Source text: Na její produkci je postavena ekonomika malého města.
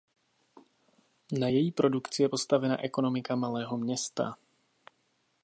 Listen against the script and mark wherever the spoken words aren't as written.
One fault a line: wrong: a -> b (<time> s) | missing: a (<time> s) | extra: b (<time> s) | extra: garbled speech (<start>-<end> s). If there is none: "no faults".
no faults